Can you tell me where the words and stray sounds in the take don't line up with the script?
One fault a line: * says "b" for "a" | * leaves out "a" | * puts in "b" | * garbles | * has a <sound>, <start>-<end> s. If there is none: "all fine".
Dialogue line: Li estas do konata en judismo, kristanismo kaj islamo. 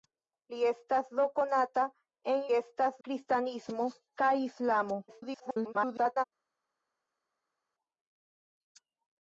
* says "estas" for "judismo"
* garbles